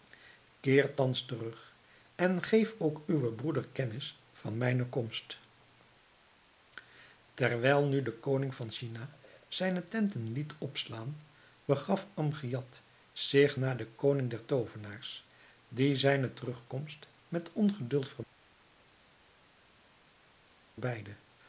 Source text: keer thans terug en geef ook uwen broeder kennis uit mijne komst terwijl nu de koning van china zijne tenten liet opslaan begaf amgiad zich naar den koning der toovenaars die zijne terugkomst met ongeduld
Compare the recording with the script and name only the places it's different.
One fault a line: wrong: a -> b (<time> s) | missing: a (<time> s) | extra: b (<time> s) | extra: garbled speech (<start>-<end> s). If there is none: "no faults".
wrong: uit -> van (4.3 s)